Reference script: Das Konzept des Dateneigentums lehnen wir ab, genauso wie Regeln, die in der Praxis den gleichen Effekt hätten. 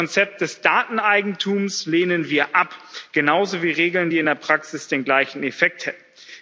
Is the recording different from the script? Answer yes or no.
no